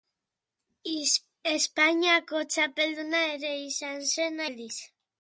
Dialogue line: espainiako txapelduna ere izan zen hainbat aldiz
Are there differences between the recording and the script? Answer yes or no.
yes